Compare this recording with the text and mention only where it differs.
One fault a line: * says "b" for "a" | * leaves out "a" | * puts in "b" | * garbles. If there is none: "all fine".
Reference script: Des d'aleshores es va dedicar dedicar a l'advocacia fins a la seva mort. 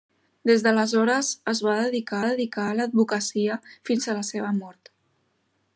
all fine